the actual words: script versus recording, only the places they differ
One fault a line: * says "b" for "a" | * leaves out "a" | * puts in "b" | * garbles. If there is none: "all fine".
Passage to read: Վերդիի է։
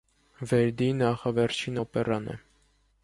* puts in "նախավերջին օպերան"